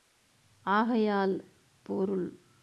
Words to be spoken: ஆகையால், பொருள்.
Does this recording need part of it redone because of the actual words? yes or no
no